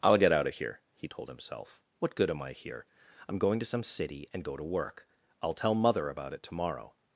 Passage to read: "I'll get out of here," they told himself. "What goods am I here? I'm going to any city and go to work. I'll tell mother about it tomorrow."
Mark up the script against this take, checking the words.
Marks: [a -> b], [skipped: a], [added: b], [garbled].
"I'll get out of here," [they -> he] told himself. "What [goods -> good] am I here? I'm going to [any -> some] city and go to work. I'll tell mother about it tomorrow."